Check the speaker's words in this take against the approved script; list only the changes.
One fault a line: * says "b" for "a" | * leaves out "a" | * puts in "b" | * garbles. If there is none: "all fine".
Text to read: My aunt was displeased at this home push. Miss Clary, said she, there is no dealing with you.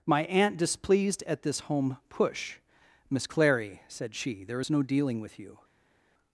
* leaves out "was"